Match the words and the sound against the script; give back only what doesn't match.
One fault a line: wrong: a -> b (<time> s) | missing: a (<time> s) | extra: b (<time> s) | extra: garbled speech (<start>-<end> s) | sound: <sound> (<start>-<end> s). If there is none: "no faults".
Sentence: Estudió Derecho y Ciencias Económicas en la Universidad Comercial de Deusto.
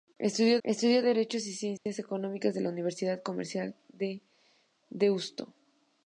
extra: estudió (0.6 s)
sound: dropout (1.8-1.9 s)